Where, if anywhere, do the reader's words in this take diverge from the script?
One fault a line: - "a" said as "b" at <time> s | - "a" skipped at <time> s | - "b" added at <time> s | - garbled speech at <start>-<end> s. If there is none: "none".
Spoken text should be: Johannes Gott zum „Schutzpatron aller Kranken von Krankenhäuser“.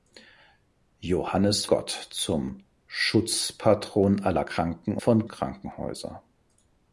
none